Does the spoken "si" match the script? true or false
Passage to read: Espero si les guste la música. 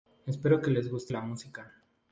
false